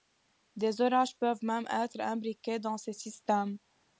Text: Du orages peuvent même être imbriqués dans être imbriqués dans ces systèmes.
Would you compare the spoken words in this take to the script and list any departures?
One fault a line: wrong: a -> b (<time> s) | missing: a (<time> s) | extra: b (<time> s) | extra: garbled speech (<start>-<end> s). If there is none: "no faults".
wrong: Du -> Des (0.6 s)
missing: être imbriqués dans (2.8 s)